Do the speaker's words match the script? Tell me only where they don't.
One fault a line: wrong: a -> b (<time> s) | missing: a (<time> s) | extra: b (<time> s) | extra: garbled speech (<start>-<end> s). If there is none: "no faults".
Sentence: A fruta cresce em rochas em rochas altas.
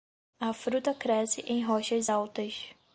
missing: em rochas (2.1 s)